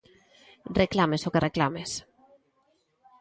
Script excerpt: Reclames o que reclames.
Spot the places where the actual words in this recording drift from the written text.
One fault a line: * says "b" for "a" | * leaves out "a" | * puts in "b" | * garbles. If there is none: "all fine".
all fine